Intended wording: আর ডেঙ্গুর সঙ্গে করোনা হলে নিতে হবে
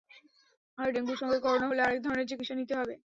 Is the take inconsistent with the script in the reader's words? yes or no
yes